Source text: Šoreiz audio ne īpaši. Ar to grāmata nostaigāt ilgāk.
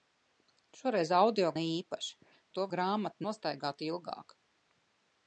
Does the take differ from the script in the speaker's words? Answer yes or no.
no